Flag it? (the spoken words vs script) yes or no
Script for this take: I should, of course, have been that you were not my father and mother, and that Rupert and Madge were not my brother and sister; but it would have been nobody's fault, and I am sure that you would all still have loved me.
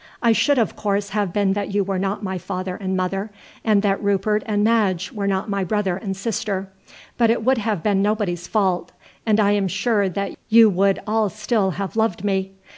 no